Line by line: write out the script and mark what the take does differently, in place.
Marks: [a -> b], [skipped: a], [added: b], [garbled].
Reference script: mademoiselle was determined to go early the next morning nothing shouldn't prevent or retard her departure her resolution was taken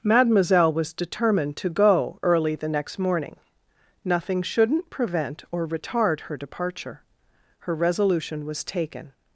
mademoiselle was determined to go early the next morning nothing shouldn't prevent or retard her departure her resolution was taken